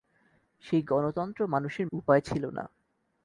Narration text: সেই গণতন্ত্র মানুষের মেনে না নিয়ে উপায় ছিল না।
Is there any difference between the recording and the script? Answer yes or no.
yes